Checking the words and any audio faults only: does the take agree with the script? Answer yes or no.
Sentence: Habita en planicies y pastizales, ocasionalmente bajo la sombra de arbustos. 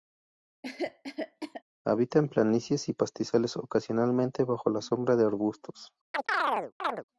no